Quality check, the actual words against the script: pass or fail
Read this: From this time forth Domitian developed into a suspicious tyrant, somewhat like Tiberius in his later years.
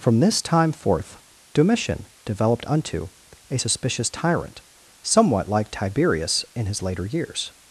fail